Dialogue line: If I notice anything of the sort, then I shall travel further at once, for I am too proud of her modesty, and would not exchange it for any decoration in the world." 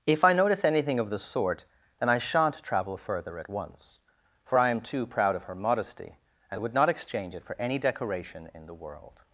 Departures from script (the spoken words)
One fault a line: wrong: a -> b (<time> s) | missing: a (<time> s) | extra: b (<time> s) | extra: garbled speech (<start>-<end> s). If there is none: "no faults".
wrong: shall -> shan't (2.2 s)